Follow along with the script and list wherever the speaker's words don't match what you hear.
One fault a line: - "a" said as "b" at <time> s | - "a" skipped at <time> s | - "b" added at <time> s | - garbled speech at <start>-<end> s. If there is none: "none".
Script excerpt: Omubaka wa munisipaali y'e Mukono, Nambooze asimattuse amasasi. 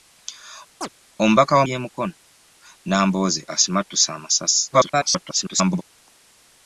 - "munisipaali" skipped at 1.6 s
- garbled speech at 4.7-5.8 s